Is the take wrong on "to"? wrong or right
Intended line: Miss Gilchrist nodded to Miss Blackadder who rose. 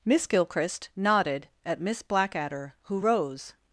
wrong